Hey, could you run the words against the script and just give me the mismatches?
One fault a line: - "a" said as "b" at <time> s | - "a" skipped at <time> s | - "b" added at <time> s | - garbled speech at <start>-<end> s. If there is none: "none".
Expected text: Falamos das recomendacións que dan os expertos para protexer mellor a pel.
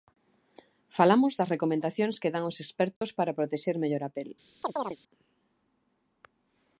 none